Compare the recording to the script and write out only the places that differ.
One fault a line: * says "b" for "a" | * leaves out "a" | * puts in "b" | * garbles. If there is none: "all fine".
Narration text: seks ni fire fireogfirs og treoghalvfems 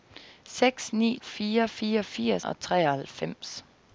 all fine